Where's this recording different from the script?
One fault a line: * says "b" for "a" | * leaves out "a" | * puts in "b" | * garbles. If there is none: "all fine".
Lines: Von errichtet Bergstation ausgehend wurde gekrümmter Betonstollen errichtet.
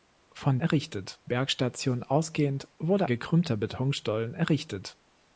all fine